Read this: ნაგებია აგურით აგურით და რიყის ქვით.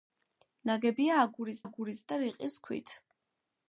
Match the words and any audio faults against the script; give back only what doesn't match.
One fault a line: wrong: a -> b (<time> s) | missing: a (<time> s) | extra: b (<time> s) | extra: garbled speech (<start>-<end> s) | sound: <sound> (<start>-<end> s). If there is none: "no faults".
no faults